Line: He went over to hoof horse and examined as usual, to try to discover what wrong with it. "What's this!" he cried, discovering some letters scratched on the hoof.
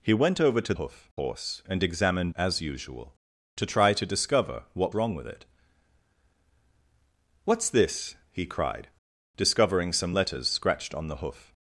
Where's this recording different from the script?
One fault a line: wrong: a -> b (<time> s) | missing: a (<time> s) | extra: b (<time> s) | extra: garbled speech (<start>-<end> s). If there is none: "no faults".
no faults